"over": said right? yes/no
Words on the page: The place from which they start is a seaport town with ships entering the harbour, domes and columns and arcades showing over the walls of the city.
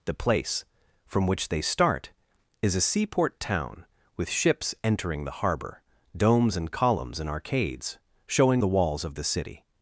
no